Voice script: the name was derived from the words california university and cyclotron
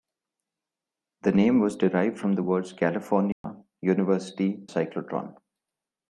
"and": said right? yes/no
no